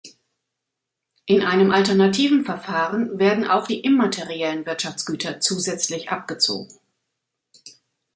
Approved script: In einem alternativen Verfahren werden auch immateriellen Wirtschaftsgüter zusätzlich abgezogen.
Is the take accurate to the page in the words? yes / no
no